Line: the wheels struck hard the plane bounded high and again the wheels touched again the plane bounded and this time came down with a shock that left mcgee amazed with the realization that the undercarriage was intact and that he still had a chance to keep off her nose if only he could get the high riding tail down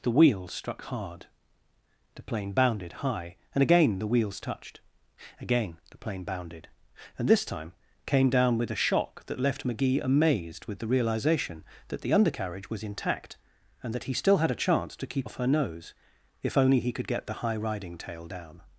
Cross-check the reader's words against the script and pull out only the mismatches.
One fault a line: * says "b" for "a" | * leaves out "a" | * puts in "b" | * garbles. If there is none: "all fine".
all fine